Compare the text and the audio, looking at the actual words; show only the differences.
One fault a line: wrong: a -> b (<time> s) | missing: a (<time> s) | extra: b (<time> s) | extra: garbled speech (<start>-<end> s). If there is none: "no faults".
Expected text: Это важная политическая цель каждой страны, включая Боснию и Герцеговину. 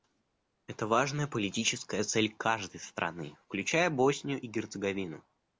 no faults